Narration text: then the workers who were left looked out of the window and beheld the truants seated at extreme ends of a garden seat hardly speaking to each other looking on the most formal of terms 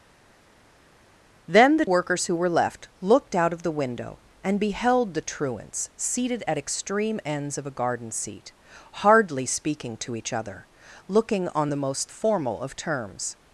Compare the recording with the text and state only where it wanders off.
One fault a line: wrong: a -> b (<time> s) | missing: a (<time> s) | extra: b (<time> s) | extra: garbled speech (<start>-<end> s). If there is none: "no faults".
no faults